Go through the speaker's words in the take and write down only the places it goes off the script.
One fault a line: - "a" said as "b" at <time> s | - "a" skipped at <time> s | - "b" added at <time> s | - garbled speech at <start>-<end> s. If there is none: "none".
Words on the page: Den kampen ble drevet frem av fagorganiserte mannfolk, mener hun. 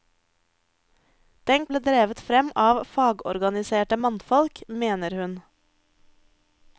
- "kampen" skipped at 1.6 s